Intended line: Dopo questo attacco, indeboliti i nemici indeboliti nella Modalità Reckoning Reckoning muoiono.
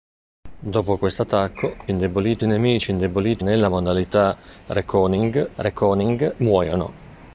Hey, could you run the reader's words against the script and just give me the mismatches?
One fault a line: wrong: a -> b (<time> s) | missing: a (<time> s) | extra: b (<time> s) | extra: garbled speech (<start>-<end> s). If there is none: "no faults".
no faults